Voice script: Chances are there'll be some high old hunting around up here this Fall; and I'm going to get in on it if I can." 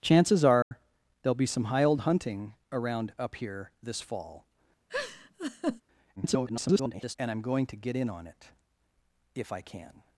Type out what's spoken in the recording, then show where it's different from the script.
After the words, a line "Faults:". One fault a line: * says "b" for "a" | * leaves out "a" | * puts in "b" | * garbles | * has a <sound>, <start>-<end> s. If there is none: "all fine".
Chances are there'll be some high old hunting around up here this Fall; [garbled] and I'm going to get in on it if I can."
Faults:
* has a dropout, 0.6-0.7 s
* has a laugh, 4.9-5.8 s
* garbles